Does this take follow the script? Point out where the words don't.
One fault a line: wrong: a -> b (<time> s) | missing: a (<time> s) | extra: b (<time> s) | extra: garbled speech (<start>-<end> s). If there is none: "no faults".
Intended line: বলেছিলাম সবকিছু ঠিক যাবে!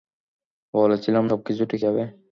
no faults